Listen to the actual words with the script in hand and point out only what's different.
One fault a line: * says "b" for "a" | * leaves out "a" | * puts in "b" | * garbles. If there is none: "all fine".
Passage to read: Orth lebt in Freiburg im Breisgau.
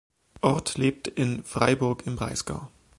all fine